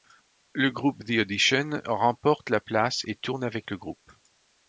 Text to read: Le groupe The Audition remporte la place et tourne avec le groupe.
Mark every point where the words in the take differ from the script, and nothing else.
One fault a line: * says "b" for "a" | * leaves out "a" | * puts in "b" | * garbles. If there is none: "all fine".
all fine